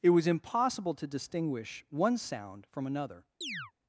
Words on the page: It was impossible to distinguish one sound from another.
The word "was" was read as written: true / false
true